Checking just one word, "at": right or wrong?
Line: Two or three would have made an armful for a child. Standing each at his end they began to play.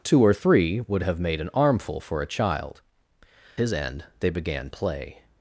wrong